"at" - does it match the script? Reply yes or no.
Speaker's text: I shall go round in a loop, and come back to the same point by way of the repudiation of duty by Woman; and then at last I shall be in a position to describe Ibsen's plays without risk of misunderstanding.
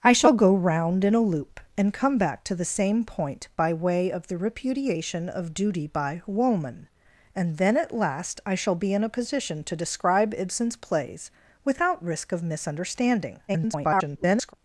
yes